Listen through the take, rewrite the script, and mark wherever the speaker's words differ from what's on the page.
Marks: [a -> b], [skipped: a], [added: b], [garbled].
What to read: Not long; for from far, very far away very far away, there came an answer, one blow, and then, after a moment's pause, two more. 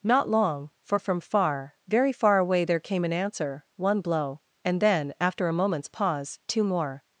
Not long; for from far, very far away [skipped: very far away,] there came an answer, one blow, and then, after a moment's pause, two more.